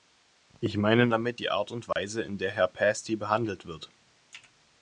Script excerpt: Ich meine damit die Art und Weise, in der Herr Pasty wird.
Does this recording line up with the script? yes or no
no